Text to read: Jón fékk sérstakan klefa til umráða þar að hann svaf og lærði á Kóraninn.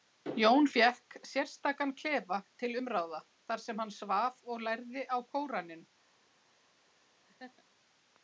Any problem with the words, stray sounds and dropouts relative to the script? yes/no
yes